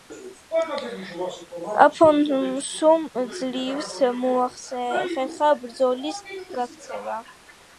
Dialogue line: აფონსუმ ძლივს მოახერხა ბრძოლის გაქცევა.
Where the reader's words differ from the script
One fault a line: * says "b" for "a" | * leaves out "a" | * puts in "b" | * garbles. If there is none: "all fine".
all fine